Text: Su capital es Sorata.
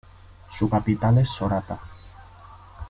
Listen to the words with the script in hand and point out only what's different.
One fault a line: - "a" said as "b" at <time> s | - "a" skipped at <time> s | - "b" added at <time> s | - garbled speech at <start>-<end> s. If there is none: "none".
none